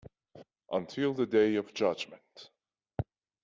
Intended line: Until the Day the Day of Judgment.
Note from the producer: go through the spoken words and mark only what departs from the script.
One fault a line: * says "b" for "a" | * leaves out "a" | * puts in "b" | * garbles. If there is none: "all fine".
* leaves out "the Day"